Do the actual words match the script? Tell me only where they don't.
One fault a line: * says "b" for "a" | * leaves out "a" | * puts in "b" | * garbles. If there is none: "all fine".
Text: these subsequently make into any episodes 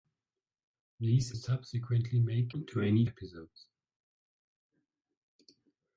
all fine